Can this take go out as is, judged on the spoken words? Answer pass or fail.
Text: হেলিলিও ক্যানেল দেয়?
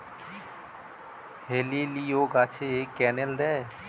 fail